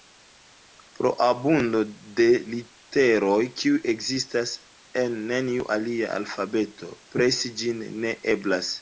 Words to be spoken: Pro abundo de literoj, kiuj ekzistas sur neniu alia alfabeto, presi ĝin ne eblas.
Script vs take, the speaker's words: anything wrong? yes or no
yes